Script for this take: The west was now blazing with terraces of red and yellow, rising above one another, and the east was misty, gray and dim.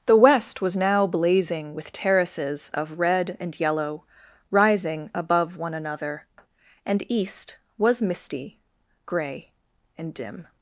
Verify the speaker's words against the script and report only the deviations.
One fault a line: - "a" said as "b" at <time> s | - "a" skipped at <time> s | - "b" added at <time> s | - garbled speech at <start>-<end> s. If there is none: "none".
- "the" skipped at 7.0 s